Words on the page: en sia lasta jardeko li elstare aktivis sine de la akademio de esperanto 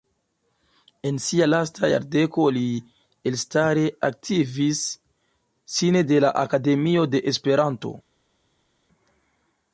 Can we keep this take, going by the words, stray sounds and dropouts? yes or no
yes